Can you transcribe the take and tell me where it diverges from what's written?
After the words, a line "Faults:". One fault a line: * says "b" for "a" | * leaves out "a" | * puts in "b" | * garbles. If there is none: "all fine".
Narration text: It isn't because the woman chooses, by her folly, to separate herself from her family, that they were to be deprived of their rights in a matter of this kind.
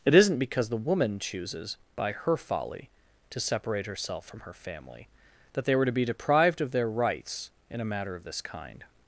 It isn't because the woman chooses, by her folly, to separate herself from her family, that they were to be deprived of their rights in a matter of this kind.
Faults:
all fine